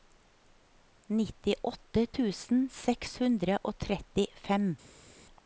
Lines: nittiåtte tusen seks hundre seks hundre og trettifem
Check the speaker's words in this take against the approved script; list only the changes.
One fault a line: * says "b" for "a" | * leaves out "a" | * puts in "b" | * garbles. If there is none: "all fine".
* leaves out "seks hundre"